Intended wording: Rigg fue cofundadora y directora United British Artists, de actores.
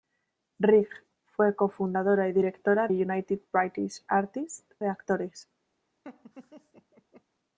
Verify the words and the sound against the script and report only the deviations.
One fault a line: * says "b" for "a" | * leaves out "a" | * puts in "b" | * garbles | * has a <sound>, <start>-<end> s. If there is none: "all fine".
* has a laugh, 6.0-7.2 s